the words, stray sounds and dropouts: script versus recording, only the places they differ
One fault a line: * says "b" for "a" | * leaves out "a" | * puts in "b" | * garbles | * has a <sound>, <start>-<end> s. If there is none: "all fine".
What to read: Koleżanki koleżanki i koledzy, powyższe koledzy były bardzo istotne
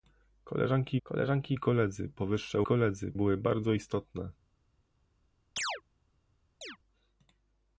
* has a chirp, 5.6-5.8 s
* has a chirp, 6.6-6.8 s